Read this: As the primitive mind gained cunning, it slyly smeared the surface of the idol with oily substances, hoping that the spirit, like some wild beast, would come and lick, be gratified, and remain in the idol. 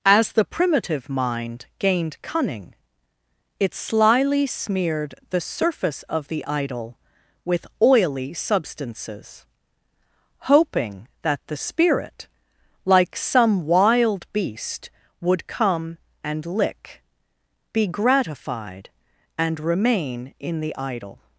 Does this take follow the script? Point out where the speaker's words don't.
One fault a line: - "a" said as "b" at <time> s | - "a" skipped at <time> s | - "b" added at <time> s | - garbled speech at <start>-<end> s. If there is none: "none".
none